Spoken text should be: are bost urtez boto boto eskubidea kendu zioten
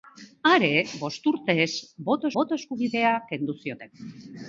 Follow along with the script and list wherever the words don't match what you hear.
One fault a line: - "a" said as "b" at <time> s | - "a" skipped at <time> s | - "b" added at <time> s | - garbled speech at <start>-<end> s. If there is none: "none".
none